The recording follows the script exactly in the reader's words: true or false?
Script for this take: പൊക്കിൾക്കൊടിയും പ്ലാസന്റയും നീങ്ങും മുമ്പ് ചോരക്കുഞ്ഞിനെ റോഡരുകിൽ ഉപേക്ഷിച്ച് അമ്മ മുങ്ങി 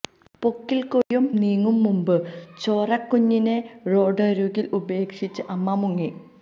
false